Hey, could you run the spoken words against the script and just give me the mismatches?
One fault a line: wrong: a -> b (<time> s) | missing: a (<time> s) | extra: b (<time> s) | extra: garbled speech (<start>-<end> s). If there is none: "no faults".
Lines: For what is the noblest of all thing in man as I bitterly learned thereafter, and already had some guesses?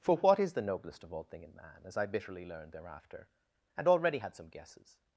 no faults